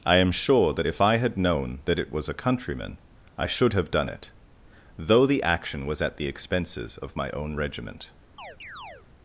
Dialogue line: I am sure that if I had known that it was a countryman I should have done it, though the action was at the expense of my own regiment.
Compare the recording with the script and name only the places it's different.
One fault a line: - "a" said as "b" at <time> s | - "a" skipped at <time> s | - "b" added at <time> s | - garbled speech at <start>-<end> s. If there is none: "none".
- "expense" said as "expenses" at 6.3 s